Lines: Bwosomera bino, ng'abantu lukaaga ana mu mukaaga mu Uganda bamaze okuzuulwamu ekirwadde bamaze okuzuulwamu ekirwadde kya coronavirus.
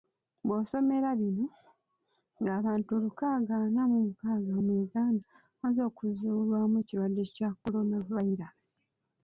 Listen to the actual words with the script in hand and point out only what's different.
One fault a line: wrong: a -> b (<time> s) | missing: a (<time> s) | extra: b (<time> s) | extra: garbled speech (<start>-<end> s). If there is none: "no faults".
missing: bamaze okuzuulwamu ekirwadde (7.2 s)